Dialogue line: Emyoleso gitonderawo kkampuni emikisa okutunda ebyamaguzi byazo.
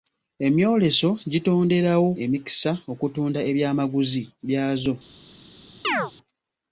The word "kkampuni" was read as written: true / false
false